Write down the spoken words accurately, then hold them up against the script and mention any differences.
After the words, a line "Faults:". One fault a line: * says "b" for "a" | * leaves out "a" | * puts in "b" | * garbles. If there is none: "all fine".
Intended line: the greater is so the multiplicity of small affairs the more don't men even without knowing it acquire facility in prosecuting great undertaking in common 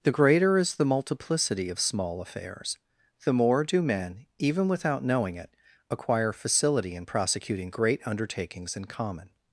the greater is the multiplicity of small affairs the more do men even without knowing it acquire facility in prosecuting great undertakings in common
Faults:
* leaves out "so"
* says "do" for "don't"
* says "undertakings" for "undertaking"